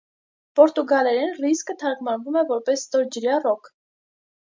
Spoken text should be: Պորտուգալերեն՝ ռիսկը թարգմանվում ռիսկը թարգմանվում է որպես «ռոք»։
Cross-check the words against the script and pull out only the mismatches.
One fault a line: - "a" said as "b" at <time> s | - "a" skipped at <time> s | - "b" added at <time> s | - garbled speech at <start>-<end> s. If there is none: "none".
- "ռիսկը թարգմանվում" skipped at 2.4 s
- "ստորջրյա" added at 2.9 s